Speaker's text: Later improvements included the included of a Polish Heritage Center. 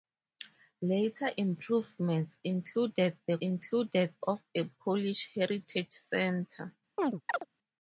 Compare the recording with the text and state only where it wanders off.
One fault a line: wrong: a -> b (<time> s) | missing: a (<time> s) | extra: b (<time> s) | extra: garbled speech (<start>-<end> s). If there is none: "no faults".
no faults